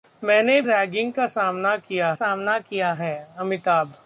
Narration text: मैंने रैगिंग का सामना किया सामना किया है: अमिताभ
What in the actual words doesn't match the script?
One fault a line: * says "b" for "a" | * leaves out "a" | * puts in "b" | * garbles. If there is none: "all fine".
all fine